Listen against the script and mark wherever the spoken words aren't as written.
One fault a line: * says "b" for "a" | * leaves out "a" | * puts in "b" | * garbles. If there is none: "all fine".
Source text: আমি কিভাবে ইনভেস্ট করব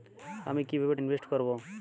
all fine